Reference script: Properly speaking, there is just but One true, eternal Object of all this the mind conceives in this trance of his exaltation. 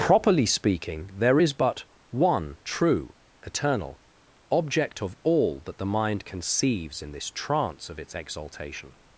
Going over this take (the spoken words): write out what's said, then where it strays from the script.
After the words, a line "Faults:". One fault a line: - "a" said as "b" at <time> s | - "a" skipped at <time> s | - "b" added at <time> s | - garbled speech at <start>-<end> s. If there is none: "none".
Properly speaking, there is but One true, eternal Object of all that the mind conceives in this trance of its exaltation.
Faults:
- "just" skipped at 1.5 s
- "this" said as "that" at 5.6 s
- "his" said as "its" at 8.0 s